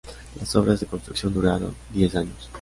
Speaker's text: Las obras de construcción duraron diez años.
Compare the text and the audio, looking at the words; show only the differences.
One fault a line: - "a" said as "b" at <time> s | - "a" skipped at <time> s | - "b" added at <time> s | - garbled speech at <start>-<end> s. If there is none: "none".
none